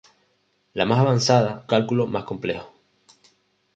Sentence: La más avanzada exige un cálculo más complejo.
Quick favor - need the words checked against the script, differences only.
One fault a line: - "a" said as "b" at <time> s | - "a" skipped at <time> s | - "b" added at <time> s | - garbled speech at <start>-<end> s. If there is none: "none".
- "exige un" skipped at 1.7 s